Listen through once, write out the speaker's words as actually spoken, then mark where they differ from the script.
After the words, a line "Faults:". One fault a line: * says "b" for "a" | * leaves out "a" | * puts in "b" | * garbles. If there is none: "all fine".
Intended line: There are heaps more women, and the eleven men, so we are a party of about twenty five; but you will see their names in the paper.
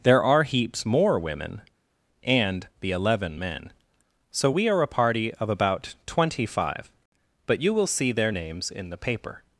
There are heaps more women, and the eleven men, so we are a party of about twenty five; but you will see their names in the paper.
Faults:
all fine